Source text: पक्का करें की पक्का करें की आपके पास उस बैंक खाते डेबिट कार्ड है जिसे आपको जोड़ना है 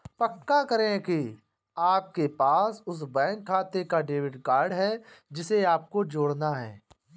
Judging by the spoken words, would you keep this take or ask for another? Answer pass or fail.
fail